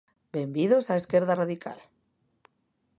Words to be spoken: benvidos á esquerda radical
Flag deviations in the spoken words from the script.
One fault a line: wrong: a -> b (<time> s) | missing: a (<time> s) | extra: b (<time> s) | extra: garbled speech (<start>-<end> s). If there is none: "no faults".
no faults